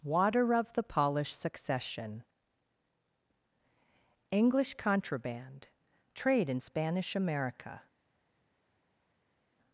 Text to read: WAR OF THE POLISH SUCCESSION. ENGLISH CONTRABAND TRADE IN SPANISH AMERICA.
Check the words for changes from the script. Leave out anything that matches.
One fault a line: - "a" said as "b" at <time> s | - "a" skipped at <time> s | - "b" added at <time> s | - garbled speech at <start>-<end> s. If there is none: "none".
- "WAR" said as "Water" at 0.0 s